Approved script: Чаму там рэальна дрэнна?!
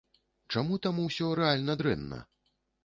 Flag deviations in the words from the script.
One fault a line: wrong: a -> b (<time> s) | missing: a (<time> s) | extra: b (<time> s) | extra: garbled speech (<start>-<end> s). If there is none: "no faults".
extra: усё (1.0 s)